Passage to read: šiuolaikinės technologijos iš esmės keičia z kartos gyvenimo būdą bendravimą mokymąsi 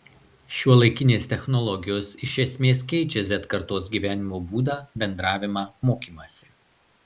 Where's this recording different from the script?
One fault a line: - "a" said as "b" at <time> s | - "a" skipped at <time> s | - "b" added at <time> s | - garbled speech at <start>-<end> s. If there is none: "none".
none